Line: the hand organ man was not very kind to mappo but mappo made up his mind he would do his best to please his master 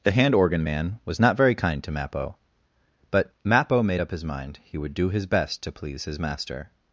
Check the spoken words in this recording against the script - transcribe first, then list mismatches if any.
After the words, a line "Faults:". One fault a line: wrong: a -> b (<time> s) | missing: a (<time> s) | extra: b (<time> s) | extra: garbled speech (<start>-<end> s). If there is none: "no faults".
the hand organ man was not very kind to mappo but mappo made up his mind he would do his best to please his master
Faults:
no faults